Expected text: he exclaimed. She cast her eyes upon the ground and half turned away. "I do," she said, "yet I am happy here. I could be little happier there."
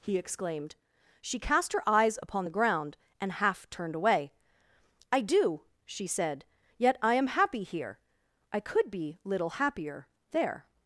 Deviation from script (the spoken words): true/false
false